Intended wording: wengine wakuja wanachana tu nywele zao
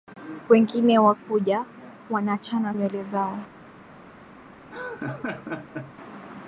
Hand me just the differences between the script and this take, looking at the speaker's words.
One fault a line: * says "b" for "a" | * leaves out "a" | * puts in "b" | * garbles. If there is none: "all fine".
* leaves out "tu"